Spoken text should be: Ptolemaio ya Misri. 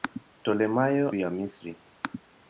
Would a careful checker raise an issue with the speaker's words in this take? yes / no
no